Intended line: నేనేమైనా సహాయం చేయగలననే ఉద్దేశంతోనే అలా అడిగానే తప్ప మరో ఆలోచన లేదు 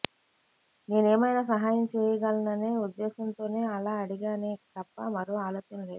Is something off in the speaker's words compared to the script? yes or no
no